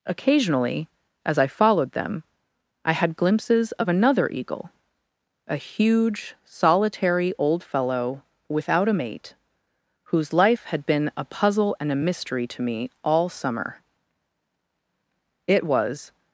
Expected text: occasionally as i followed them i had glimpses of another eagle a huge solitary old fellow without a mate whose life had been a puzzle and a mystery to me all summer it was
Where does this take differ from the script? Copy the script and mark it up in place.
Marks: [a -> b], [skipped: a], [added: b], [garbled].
occasionally as i followed them i had glimpses of another eagle a huge solitary old fellow without a mate whose life had been a puzzle and a mystery to me all summer it was